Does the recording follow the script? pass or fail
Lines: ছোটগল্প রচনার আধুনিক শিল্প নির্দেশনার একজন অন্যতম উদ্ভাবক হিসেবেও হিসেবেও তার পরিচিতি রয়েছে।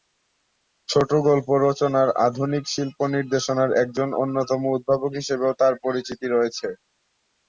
fail